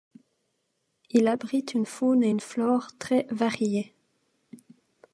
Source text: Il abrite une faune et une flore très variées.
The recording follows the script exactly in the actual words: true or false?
true